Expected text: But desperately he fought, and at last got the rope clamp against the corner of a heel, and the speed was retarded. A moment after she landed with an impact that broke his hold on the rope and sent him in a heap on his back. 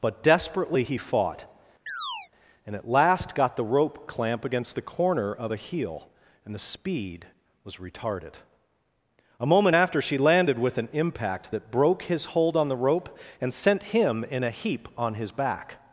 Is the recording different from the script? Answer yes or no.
no